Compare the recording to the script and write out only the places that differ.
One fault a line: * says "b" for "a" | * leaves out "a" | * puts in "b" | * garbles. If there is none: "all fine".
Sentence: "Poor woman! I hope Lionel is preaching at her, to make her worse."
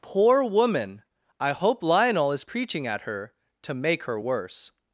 all fine